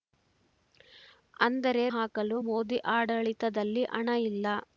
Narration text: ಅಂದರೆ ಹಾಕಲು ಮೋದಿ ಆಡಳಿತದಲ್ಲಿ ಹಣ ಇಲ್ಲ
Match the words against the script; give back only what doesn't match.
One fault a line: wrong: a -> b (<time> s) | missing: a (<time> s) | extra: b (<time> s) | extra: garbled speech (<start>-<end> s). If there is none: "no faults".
no faults